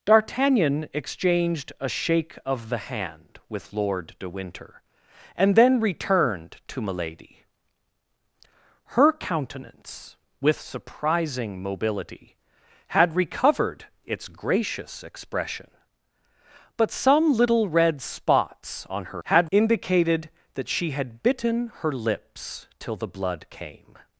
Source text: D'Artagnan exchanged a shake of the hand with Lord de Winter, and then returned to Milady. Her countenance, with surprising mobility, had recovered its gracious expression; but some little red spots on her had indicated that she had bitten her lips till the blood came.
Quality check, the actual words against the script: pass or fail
pass